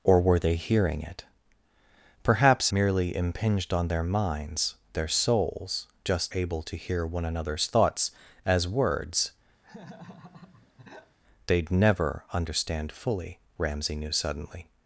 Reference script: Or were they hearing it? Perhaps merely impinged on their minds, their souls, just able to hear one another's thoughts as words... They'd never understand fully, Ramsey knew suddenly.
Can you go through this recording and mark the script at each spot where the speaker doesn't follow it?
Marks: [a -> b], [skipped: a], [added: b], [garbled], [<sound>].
Or were they hearing it? Perhaps merely impinged on their minds, their souls, just able to hear one another's thoughts as words... [laugh] They'd never understand fully, Ramsey knew suddenly.